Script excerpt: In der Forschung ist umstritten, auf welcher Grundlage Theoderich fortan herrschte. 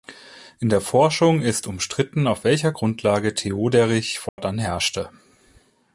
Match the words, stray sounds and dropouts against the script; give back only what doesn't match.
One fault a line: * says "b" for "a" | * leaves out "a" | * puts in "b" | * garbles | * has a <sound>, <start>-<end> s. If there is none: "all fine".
* has a dropout, 4.3-4.4 s